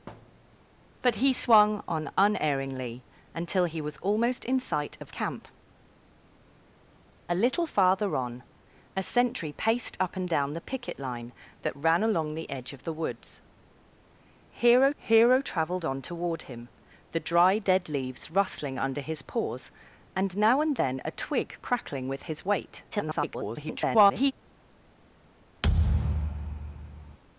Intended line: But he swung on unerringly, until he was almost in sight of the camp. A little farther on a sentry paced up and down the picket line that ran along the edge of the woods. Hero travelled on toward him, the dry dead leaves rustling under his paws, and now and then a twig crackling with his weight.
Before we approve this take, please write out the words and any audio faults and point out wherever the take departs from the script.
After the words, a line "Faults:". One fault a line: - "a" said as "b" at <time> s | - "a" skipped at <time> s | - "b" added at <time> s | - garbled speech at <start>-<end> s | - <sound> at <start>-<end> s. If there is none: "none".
But he swung on unerringly, until he was almost in sight of camp. A little farther on a sentry paced up and down the picket line that ran along the edge of the woods. Hero hero travelled on toward him, the dry dead leaves rustling under his paws, and now and then a twig crackling with his weight. [garbled]
Faults:
- thud at 0.1-0.6 s
- "the" skipped at 5.1 s
- "hero" added at 15.0 s
- garbled speech at 22.9-24.3 s
- thud at 25.6-27.2 s